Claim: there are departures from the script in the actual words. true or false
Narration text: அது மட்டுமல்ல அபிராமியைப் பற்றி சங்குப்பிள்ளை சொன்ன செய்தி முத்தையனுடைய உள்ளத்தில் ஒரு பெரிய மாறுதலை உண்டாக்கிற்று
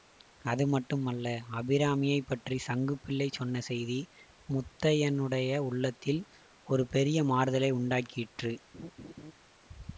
false